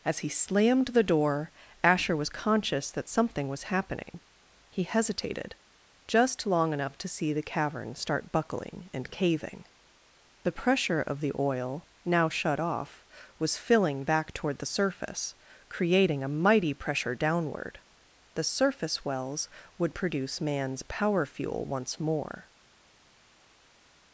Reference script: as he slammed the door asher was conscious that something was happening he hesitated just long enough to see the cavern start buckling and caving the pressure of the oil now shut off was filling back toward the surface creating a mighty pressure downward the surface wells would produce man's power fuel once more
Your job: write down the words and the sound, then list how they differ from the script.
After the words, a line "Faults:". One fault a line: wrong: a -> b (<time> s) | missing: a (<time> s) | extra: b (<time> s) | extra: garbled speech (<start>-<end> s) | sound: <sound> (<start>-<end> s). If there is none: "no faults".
as he slammed the door asher was conscious that something was happening he hesitated just long enough to see the cavern start buckling and caving the pressure of the oil now shut off was filling back toward the surface creating a mighty pressure downward the surface wells would produce man's power fuel once more
Faults:
no faults